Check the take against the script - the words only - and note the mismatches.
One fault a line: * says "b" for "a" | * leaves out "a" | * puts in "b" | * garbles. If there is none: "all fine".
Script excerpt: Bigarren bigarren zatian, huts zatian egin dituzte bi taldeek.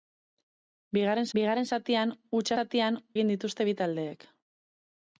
all fine